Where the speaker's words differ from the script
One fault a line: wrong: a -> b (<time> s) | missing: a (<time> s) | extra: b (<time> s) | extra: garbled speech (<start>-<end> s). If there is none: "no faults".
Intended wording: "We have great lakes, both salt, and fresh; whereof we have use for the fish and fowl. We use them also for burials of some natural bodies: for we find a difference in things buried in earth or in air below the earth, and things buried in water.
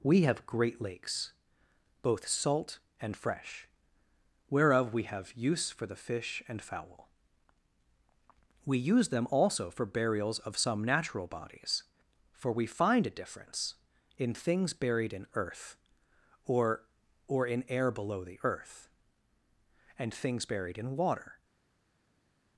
extra: or (17.3 s)